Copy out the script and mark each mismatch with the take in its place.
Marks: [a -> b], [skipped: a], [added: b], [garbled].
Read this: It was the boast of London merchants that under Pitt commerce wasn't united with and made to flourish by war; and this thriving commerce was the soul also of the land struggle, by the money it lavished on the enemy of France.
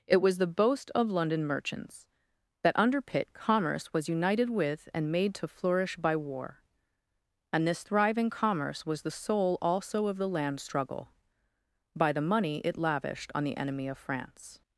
It was the boast of London merchants that under Pitt commerce [wasn't -> was] united with and made to flourish by war; and this thriving commerce was the soul also of the land struggle, by the money it lavished on the enemy of France.